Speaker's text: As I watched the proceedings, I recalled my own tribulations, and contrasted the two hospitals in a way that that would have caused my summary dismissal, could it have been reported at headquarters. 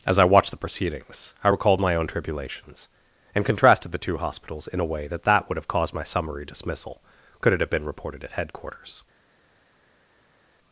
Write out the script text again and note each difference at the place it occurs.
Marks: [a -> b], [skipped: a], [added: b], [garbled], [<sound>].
As I watched the proceedings, I recalled my own tribulations, and contrasted the two hospitals in a way that that would have caused my summary dismissal, could it have been reported at headquarters.